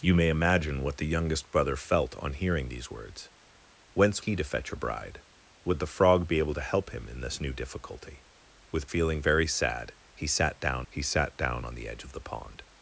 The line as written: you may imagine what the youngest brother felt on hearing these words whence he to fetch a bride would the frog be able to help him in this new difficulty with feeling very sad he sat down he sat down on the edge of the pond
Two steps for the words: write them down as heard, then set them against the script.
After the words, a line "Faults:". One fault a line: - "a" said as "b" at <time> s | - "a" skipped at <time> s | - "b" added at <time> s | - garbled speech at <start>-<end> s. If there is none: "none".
you may imagine what the youngest brother felt on hearing these words whence he to fetch a bride would the frog be able to help him in this new difficulty with feeling very sad he sat down he sat down on the edge of the pond
Faults:
none